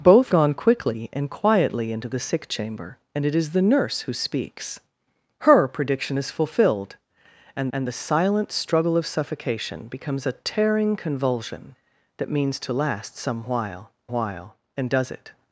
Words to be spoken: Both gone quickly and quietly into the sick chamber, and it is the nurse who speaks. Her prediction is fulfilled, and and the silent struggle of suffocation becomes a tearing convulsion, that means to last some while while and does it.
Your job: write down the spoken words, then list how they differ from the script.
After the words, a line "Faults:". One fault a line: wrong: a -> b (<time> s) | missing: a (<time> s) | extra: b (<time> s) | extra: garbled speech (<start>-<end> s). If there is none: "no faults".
Both gone quickly and quietly into the sick chamber, and it is the nurse who speaks. Her prediction is fulfilled, and and the silent struggle of suffocation becomes a tearing convulsion, that means to last some while while and does it.
Faults:
no faults